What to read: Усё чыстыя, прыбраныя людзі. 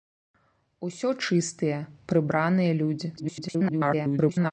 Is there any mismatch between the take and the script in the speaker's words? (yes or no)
yes